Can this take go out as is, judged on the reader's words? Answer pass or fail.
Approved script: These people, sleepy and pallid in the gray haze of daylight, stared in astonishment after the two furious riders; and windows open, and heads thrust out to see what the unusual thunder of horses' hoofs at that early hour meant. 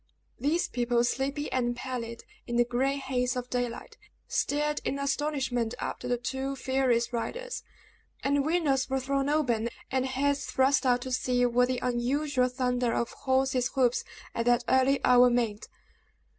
fail